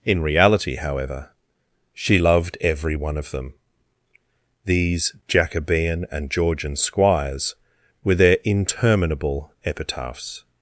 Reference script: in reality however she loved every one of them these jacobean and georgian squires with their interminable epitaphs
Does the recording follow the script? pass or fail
fail